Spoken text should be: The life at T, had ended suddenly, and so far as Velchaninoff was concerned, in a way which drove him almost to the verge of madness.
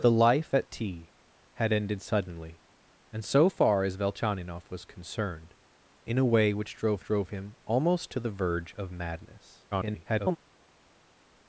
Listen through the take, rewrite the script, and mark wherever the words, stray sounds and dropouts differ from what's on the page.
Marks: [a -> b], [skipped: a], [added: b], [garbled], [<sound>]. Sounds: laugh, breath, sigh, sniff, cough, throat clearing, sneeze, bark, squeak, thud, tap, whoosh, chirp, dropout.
The life at T, had ended suddenly, and so far as Velchaninoff was concerned, in a way which drove [added: drove] him almost to the verge of madness. [garbled]